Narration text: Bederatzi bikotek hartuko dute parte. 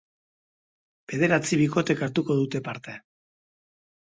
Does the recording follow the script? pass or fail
pass